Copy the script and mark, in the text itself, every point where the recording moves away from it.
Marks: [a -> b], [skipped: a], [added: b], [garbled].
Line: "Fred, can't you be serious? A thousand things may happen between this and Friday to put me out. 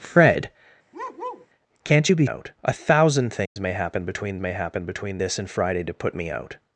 "Fred, can't you be [serious? -> out] A thousand things may happen between [added: may happen between] this and Friday to put me out.